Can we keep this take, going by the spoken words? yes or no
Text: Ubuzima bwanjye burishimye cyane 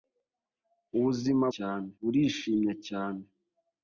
no